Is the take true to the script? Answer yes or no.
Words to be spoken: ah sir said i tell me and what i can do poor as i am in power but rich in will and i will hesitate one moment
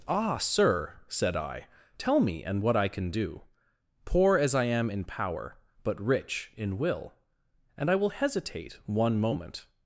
yes